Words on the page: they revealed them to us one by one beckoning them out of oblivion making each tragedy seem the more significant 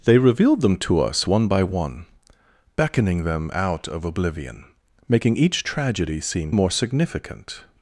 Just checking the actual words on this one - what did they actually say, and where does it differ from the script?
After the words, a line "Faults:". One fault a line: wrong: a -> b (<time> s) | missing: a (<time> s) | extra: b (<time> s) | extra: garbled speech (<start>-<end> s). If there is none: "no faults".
they revealed them to us one by one beckoning them out of oblivion making each tragedy seem the more significant
Faults:
no faults